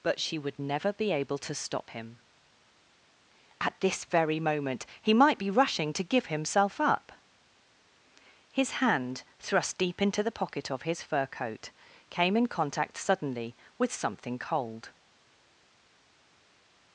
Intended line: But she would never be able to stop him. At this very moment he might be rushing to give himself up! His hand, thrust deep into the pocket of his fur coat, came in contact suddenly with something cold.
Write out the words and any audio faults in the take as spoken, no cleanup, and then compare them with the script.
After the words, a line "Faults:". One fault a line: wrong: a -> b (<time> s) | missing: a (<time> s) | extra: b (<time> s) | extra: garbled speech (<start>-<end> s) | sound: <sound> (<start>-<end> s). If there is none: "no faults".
But she would never be able to stop him. At this very moment he might be rushing to give himself up! His hand, thrust deep into the pocket of his fur coat, came in contact suddenly with something cold.
Faults:
no faults